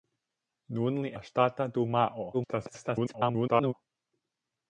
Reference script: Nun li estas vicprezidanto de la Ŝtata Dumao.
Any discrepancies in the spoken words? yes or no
yes